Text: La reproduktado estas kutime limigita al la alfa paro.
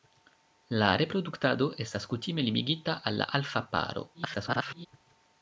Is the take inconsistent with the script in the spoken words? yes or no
yes